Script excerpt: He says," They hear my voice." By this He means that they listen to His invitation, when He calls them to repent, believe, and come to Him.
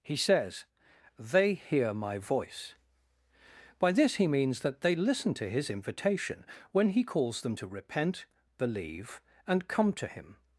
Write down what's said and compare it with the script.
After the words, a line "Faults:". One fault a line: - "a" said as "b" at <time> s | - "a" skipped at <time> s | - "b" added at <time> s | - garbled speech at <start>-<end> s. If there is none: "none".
He says," They hear my voice." By this He means that they listen to His invitation, when He calls them to repent, believe, and come to Him.
Faults:
none